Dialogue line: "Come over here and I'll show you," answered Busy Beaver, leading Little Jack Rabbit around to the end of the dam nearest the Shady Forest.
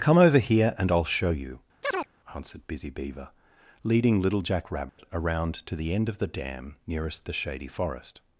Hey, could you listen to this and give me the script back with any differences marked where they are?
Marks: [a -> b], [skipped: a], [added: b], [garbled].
"Come over here and I'll show you," answered Busy Beaver, leading Little Jack Rabbit around to the end of the dam nearest the Shady Forest.